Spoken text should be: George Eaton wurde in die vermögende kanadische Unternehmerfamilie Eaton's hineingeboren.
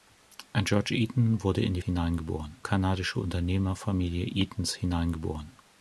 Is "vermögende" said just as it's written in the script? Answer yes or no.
no